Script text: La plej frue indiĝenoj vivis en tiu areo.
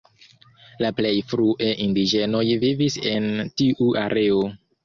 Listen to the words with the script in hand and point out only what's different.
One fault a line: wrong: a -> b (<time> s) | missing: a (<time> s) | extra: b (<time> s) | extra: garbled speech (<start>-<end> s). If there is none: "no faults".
no faults